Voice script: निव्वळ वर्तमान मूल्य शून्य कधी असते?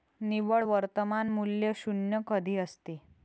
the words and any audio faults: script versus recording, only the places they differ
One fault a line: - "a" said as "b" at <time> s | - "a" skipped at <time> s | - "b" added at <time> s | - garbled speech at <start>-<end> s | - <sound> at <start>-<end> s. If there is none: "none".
none